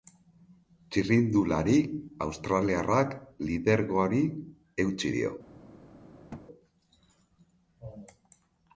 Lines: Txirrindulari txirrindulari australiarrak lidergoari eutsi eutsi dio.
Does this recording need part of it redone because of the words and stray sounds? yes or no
yes